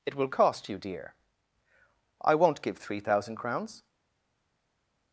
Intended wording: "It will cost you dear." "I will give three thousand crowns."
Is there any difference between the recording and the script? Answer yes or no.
yes